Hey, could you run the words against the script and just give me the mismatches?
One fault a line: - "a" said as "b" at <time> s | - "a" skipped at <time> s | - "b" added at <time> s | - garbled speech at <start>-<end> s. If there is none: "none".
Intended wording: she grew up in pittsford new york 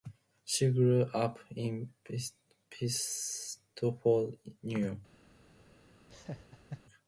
none